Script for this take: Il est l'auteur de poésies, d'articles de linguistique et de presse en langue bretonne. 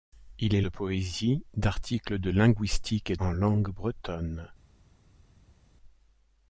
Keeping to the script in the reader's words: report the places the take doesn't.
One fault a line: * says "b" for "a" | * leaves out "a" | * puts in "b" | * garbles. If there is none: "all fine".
* leaves out "l'auteur"
* leaves out "de presse"